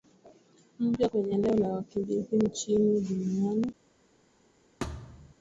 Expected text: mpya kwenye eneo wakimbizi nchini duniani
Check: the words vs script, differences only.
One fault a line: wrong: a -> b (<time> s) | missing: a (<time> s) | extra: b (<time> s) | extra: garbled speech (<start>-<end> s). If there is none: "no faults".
extra: la (1.6 s)